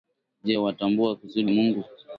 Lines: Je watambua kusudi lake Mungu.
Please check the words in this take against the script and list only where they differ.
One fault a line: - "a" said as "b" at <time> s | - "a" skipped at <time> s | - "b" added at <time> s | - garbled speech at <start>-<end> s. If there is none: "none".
- "lake" skipped at 1.4 s